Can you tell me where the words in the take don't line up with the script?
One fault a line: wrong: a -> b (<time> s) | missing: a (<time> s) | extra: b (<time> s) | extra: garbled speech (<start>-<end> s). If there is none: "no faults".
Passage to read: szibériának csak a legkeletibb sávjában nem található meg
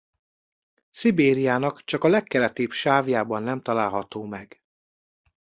no faults